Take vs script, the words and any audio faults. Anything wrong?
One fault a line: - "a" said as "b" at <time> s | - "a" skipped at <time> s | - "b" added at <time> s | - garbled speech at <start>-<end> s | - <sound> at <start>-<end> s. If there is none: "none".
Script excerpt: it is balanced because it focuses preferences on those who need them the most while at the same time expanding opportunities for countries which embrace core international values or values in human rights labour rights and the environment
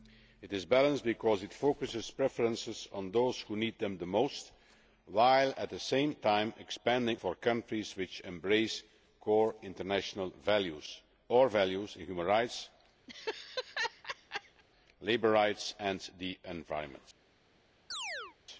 - "opportunities" skipped at 7.2 s
- laugh at 13.1-14.6 s
- chirp at 17.9-18.4 s